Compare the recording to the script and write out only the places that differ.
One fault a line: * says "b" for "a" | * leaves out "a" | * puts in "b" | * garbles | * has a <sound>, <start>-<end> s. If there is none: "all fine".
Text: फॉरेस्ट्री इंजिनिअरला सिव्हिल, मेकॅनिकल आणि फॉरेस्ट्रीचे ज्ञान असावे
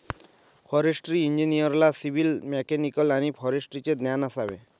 all fine